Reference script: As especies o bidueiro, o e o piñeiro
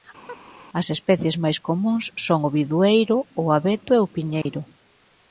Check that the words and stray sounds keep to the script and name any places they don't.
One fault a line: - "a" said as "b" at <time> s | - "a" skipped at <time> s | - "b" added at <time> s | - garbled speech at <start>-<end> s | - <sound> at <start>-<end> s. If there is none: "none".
- chirp at 0.3-0.4 s
- "máis comúns son" added at 1.4 s
- "abeto" added at 3.6 s
- dropout at 4.4-4.5 s